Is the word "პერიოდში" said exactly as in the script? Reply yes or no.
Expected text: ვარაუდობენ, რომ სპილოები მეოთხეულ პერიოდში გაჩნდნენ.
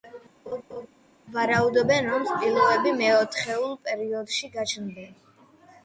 yes